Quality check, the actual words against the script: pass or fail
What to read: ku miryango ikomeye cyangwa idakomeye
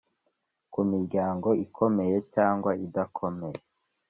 pass